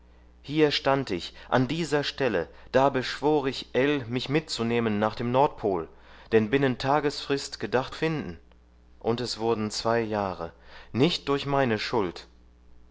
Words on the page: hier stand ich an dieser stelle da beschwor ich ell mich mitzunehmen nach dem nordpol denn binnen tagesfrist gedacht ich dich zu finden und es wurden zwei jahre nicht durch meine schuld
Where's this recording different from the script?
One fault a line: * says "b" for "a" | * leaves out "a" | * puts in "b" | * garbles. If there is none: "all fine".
* leaves out "ich dich zu"